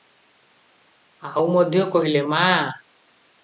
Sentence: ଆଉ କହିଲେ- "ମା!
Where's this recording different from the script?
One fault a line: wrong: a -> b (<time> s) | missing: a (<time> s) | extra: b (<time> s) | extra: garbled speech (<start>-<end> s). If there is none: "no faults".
extra: ମଧ୍ୟ (1.5 s)